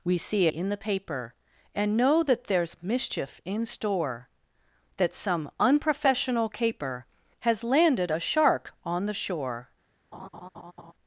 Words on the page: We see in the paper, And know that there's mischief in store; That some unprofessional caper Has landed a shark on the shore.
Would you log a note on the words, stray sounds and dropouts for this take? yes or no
yes